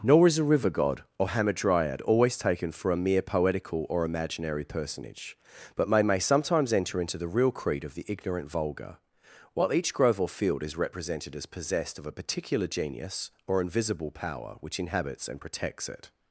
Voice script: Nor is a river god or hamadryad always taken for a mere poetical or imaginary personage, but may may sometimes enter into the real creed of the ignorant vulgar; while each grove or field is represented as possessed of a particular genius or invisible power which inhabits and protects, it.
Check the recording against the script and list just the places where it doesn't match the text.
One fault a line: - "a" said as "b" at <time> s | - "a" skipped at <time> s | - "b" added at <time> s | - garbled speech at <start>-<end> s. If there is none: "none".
none